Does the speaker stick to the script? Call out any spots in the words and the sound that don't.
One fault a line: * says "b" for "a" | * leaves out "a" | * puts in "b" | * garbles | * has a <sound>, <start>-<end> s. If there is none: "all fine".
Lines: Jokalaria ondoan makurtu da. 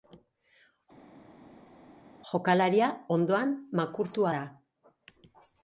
all fine